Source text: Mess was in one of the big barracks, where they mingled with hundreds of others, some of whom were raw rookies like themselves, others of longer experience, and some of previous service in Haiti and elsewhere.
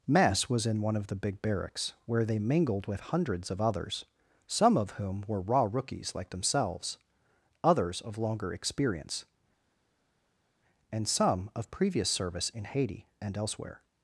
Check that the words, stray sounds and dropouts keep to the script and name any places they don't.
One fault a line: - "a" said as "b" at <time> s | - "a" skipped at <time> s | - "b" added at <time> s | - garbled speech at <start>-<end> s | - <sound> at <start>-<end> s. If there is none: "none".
none